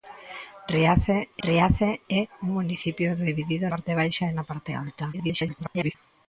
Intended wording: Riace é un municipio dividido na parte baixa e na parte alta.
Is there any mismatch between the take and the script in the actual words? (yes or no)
yes